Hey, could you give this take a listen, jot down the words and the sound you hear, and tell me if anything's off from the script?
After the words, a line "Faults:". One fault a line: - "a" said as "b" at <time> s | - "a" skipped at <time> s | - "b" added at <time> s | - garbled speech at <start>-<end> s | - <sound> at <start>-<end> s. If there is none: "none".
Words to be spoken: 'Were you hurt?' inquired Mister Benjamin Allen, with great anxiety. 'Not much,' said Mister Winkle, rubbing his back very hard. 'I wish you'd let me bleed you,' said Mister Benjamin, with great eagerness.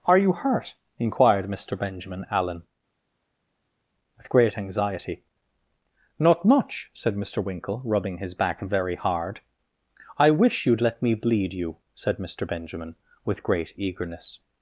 'Are you hurt?' inquired Mister Benjamin Allen, with great anxiety. 'Not much,' said Mister Winkle, rubbing his back very hard. 'I wish you'd let me bleed you,' said Mister Benjamin, with great eagerness.
Faults:
- "Were" said as "Are" at 0.1 s